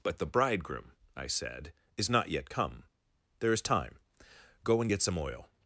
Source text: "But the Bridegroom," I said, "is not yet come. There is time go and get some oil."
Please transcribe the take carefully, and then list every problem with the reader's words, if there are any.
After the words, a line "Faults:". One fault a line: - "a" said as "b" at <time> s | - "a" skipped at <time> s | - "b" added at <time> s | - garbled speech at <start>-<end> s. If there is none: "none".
"But the Bridegroom," I said, "is not yet come. There is time go and get some oil."
Faults:
none